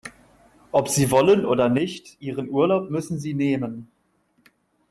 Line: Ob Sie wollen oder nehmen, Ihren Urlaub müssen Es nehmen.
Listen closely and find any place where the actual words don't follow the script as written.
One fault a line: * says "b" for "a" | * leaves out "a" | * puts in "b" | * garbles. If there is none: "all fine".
* says "nicht" for "nehmen"
* says "Sie" for "Es"